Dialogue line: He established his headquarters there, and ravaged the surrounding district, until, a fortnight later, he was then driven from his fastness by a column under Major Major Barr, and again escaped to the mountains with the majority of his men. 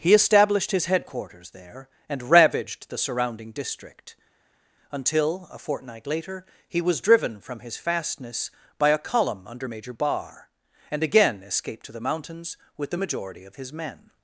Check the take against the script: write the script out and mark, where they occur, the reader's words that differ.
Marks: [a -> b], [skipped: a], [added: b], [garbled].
He established his headquarters there, and ravaged the surrounding district, until, a fortnight later, he was [skipped: then] driven from his fastness by a column under Major [skipped: Major] Barr, and again escaped to the mountains with the majority of his men.